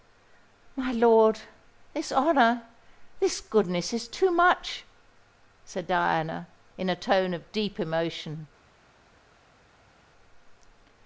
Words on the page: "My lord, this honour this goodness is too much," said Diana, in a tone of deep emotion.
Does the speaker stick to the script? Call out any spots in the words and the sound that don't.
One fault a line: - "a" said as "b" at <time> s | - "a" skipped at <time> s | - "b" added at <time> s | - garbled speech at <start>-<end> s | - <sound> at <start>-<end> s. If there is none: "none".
none